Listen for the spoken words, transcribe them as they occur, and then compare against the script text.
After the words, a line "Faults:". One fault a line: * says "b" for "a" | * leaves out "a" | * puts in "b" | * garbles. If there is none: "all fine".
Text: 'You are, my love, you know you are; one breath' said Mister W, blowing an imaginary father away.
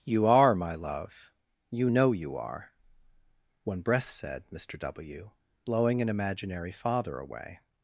'You are, my love, you know you are; one breath' said Mister W, blowing an imaginary father away.
Faults:
all fine